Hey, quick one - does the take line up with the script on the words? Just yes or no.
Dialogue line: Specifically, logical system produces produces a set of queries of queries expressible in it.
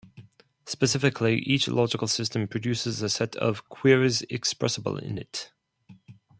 no